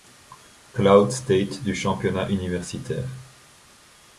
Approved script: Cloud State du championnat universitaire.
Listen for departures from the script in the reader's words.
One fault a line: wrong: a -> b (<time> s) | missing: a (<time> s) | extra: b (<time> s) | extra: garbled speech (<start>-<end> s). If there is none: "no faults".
no faults